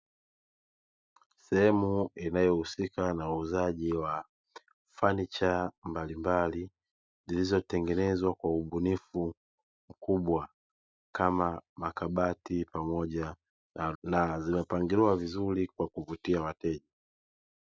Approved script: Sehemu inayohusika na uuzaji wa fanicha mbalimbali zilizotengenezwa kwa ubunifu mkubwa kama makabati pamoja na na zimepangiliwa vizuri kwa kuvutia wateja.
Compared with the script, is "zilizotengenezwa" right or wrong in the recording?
right